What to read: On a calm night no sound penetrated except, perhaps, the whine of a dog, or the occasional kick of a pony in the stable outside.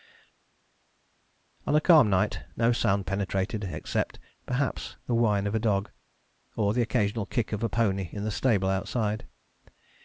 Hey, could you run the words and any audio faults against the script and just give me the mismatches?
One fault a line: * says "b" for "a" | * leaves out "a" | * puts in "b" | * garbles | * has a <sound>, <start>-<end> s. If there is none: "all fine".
all fine